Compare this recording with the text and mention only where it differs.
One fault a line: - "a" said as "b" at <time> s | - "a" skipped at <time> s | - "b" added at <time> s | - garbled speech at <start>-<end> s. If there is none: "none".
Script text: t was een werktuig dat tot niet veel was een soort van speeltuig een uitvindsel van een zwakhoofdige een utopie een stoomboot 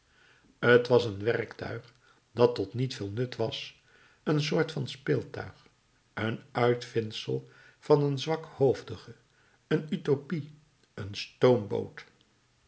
- "nut" added at 3.1 s